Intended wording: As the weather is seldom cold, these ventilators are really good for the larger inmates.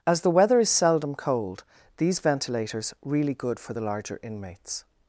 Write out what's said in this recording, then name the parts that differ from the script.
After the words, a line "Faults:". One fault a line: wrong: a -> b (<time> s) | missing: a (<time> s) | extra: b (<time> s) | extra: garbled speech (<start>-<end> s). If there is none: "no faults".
As the weather is seldom cold, these ventilators really good for the larger inmates.
Faults:
missing: are (3.0 s)